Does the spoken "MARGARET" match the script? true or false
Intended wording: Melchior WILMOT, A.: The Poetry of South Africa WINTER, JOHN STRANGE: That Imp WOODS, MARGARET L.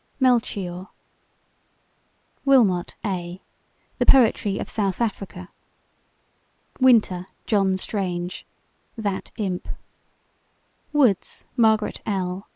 true